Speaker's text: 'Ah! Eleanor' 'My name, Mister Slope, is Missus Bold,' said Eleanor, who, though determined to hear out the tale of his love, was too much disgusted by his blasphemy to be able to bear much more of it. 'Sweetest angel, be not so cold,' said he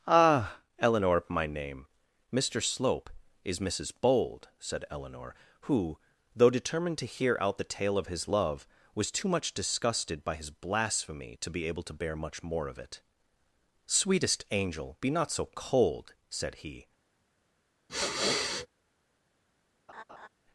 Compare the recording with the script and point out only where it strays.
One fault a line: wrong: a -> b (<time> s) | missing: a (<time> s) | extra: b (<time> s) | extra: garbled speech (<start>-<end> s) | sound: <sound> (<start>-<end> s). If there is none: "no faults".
sound: sniff (17.9-18.7 s)
sound: laugh (19.9-20.3 s)